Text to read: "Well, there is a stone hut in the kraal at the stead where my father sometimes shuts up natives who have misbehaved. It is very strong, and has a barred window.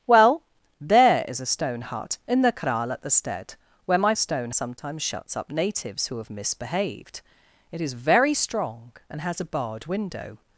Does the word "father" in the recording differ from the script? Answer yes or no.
yes